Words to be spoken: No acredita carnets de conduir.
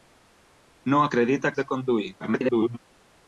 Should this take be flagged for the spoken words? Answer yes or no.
yes